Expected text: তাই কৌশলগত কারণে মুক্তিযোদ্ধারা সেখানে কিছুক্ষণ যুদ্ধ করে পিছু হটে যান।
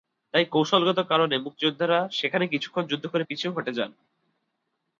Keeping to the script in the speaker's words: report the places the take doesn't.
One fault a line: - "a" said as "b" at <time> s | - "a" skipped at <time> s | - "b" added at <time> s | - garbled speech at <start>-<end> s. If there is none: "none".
none